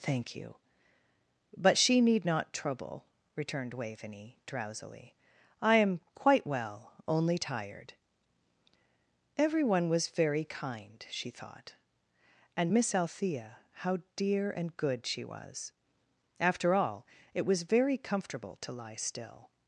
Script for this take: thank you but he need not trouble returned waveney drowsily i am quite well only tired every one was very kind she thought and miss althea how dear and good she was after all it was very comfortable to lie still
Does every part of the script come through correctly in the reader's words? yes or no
no